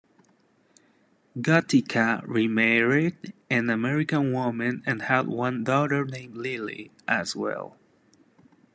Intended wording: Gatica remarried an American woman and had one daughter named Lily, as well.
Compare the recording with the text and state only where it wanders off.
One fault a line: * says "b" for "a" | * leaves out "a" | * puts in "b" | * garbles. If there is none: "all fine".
all fine